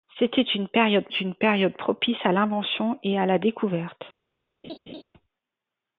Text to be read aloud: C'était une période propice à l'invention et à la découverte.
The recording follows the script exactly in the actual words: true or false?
false